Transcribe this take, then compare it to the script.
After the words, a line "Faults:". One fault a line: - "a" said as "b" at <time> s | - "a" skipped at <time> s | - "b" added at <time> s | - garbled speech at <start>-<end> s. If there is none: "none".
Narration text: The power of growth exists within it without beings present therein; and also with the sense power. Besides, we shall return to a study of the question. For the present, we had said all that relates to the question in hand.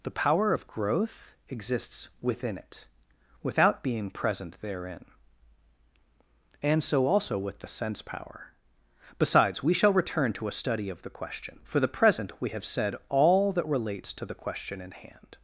The power of growth exists within it without being present therein; and so also with the sense power. Besides, we shall return to a study of the question. For the present, we have said all that relates to the question in hand.
Faults:
- "beings" said as "being" at 3.8 s
- "so" added at 6.8 s
- "had" said as "have" at 12.5 s